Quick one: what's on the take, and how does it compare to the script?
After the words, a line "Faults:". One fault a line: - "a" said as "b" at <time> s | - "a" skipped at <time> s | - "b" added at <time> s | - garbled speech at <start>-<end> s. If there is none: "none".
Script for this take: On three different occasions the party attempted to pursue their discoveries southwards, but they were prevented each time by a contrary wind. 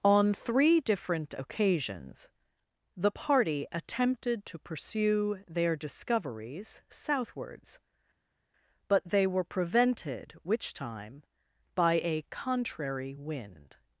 On three different occasions the party attempted to pursue their discoveries southwards, but they were prevented which time by a contrary wind.
Faults:
- "each" said as "which" at 10.4 s